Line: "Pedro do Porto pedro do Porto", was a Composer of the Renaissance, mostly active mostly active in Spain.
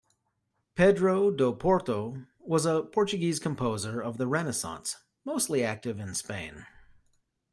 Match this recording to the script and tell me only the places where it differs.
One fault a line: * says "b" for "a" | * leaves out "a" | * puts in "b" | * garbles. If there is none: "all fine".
* leaves out "pedro do Porto"
* puts in "Portuguese"
* leaves out "mostly active"